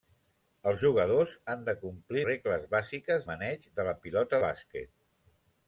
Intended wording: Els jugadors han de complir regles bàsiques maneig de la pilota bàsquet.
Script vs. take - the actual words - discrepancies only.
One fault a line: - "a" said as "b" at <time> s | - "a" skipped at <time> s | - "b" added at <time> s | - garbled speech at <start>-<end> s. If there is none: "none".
none